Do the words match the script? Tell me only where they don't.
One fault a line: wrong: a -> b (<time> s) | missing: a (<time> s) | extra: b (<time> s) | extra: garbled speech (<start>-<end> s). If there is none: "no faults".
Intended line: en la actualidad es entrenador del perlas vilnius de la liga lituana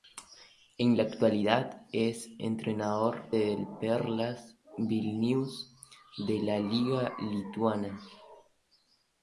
no faults